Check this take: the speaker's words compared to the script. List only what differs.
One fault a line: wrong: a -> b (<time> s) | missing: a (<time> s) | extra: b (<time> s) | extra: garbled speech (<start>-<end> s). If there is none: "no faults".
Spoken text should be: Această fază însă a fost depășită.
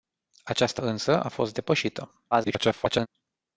missing: fază (0.8 s)
extra: garbled speech (2.3-3.1 s)